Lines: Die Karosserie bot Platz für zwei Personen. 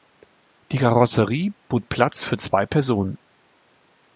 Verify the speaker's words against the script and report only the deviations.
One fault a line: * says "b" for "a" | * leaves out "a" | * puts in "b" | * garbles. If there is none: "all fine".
all fine